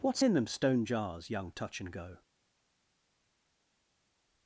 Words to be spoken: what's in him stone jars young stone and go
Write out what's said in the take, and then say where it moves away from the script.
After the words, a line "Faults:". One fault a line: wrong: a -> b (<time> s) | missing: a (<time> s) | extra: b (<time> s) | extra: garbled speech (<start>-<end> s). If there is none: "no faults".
what's in them stone jars young touch and go
Faults:
wrong: him -> them (0.3 s)
wrong: stone -> touch (1.5 s)